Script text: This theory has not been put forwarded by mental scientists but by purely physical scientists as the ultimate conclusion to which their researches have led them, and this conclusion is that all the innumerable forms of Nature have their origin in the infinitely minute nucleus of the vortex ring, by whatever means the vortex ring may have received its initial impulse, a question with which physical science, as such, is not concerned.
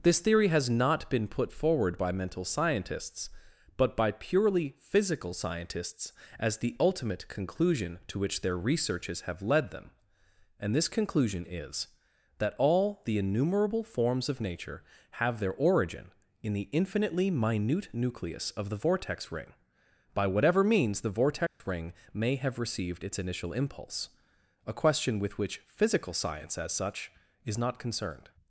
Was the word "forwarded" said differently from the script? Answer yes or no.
yes